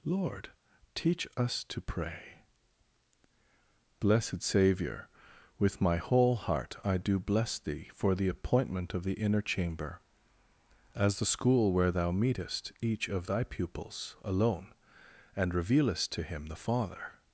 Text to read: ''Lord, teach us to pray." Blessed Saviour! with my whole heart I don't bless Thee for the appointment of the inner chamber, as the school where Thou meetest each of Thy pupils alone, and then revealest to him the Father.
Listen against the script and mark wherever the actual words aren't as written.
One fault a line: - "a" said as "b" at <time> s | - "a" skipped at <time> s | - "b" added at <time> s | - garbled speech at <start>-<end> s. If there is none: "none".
- "don't" said as "do" at 7.0 s
- "then" skipped at 15.5 s